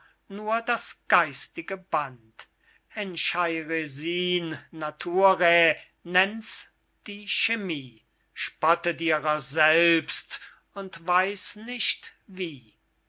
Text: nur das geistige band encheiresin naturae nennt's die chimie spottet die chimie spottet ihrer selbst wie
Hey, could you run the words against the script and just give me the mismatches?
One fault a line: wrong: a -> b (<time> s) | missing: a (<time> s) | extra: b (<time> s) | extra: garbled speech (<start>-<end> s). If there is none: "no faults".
wrong: die chimie spottet ihrer selbst -> ihrer selbst und weiß nicht (9.0 s)